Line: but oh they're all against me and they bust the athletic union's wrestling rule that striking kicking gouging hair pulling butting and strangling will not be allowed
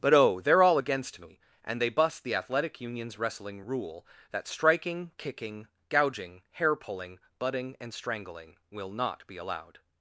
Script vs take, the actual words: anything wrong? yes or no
no